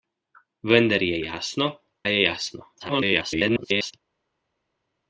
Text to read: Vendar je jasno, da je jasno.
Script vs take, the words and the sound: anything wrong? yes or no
yes